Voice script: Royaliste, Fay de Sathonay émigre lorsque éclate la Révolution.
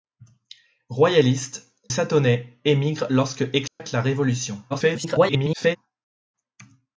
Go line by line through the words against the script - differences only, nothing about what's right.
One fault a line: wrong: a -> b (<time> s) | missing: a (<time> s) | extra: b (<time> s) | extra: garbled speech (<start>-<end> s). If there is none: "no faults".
missing: Fay de (1.8 s)
extra: garbled speech (4.7-5.8 s)